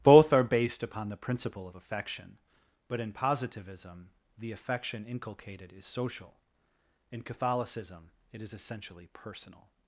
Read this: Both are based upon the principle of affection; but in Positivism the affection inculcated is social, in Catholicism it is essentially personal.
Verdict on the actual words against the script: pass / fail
pass